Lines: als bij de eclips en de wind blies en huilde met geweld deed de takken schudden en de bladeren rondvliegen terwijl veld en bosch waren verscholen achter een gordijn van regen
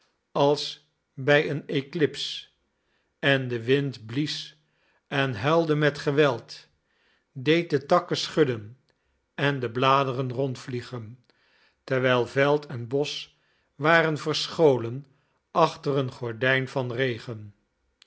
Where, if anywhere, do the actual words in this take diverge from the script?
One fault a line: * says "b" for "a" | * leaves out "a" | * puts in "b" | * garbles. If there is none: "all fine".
* says "een" for "de"